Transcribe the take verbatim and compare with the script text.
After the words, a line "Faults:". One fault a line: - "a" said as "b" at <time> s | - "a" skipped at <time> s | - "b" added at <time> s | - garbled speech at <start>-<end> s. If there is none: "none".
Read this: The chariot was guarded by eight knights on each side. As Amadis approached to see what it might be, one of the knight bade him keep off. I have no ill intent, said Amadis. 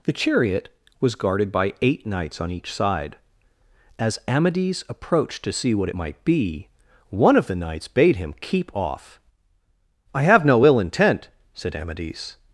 The chariot was guarded by eight knights on each side. As Amadis approached to see what it might be, one of the knights bade him keep off. I have no ill intent, said Amadis.
Faults:
- "knight" said as "knights" at 7.5 s